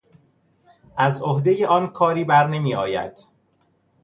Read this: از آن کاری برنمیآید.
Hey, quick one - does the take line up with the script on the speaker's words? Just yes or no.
no